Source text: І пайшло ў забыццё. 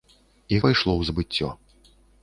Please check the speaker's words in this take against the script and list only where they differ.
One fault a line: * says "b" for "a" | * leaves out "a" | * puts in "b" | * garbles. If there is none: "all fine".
all fine